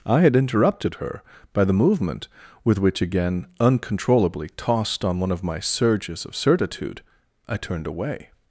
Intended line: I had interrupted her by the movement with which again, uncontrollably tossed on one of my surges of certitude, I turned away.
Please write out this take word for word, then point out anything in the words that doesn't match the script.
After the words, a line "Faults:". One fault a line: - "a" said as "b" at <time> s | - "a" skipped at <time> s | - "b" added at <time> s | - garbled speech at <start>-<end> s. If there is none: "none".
I had interrupted her by the movement with which again, uncontrollably tossed on one of my surges of certitude, I turned away.
Faults:
none